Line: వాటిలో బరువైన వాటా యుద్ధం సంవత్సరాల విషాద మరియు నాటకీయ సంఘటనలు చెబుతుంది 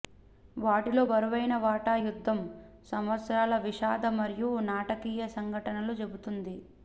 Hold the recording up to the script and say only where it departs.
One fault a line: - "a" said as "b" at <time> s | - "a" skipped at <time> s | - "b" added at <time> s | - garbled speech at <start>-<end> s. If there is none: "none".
none